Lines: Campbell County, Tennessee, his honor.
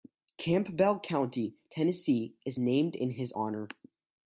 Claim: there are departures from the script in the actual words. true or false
true